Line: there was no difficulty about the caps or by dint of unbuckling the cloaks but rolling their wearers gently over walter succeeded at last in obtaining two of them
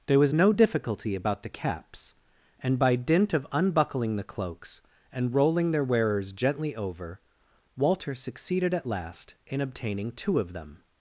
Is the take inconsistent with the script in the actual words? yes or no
yes